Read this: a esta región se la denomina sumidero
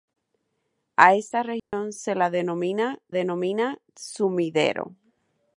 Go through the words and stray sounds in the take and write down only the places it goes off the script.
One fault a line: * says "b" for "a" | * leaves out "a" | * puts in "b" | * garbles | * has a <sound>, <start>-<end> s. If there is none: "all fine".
* has a dropout, 1.6-1.7 s
* puts in "denomina"